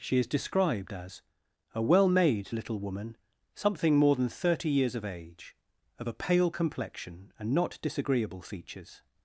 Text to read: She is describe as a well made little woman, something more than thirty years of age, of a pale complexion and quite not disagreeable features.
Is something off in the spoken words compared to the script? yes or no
yes